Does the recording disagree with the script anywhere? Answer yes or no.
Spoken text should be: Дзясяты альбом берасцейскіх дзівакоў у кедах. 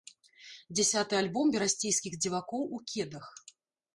no